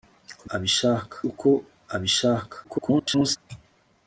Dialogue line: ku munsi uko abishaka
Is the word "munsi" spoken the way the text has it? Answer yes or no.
no